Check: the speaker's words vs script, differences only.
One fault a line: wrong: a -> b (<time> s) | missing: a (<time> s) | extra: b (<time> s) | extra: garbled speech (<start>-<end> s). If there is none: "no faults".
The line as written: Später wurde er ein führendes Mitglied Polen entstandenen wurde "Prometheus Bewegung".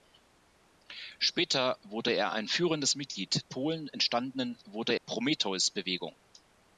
no faults